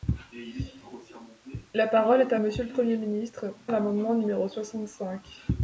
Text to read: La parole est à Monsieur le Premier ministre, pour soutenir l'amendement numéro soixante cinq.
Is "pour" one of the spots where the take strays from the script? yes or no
yes